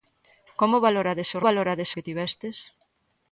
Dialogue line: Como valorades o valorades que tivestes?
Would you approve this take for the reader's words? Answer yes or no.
yes